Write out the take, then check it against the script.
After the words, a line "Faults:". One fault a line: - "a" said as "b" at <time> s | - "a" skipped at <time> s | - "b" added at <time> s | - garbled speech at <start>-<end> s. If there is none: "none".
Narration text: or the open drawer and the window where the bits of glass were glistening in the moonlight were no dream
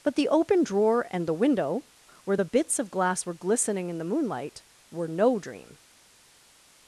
but the open drawer and the window where the bits of glass were glistening in the moonlight were no dream
Faults:
- "or" said as "but" at 0.0 s